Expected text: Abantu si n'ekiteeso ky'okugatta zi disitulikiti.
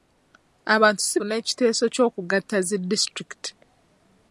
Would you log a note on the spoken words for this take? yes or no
no